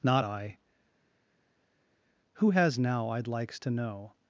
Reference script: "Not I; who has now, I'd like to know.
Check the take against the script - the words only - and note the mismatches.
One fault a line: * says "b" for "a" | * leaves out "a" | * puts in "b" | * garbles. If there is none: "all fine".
* says "likes" for "like"